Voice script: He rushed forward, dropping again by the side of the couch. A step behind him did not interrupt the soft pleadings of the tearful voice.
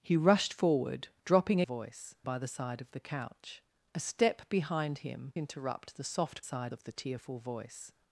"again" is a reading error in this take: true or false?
true